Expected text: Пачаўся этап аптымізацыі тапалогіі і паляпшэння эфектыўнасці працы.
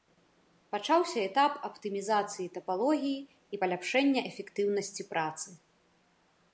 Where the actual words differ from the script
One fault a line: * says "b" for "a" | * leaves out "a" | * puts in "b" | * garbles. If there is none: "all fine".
all fine